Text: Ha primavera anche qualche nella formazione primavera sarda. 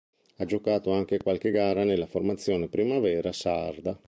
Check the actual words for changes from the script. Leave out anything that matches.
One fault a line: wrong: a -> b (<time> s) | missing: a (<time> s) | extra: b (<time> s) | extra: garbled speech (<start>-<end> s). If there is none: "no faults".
wrong: primavera -> giocato (0.5 s)
extra: gara (1.5 s)